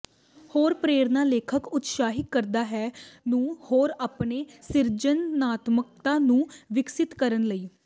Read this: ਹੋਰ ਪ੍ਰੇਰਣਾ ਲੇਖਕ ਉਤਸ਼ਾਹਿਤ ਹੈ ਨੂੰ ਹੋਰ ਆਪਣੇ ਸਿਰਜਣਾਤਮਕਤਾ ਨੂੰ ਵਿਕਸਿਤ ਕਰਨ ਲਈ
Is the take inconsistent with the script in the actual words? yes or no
yes